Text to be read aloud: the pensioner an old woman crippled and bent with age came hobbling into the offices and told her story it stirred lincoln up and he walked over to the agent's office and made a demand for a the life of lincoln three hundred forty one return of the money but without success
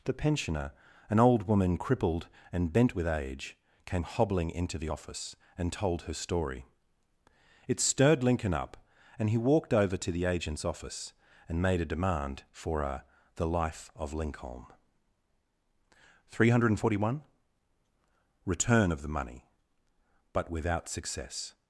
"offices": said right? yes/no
no